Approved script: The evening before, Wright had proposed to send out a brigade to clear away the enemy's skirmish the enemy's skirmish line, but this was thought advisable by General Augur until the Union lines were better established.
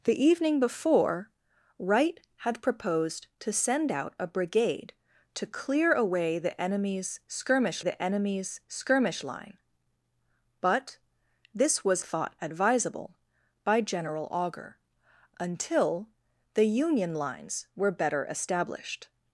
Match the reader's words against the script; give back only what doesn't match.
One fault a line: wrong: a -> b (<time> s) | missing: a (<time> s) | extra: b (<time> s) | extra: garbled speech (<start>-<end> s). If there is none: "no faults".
no faults